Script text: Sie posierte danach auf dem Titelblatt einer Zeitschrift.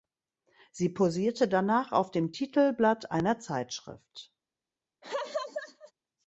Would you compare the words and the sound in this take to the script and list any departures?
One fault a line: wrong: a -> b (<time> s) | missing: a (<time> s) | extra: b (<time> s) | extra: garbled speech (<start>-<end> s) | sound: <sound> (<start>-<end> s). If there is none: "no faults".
sound: laugh (5.0-5.9 s)